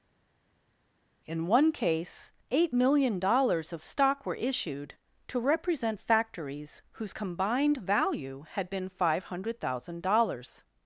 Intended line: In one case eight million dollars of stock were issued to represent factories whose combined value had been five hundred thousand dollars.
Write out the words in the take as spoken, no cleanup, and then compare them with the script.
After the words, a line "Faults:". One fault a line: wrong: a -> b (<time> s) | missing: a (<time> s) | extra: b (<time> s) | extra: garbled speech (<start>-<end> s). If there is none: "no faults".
In one case eight million dollars of stock were issued to represent factories whose combined value had been five hundred thousand dollars.
Faults:
no faults